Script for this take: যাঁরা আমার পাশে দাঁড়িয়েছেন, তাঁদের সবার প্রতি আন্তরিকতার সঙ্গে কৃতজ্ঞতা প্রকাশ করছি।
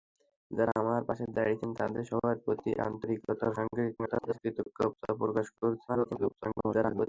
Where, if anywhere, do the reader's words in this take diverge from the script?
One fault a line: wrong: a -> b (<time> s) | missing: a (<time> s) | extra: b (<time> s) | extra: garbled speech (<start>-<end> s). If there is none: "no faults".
extra: garbled speech (4.0-4.4 s)
extra: garbled speech (5.9-7.1 s)